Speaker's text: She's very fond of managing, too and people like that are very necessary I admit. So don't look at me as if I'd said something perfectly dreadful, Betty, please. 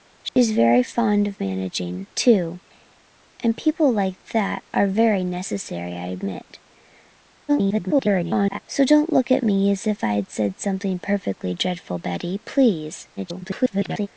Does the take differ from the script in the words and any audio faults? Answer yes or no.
yes